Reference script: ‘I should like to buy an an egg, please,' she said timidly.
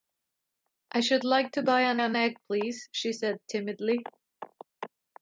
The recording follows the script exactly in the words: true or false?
true